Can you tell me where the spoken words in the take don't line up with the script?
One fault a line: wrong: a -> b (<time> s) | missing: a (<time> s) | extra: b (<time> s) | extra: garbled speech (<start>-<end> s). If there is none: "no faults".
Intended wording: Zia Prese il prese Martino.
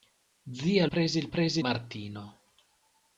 no faults